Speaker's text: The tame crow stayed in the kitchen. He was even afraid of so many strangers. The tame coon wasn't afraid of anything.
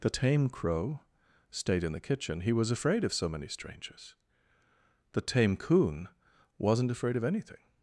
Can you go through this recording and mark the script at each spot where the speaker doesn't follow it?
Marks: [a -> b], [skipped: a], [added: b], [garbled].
The tame crow stayed in the kitchen. He was [skipped: even] afraid of so many strangers. The tame coon wasn't afraid of anything.